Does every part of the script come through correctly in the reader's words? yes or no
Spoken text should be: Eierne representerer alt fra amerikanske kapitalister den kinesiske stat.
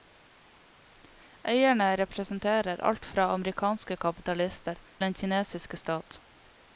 yes